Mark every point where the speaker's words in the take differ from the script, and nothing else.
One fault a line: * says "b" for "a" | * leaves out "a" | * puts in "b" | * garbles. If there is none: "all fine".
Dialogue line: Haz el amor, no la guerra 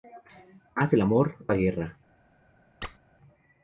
* leaves out "no"